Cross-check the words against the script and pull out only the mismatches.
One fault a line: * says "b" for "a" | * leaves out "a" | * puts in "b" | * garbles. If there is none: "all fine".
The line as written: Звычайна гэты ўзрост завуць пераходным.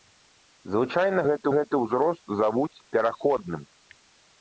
* puts in "гэты"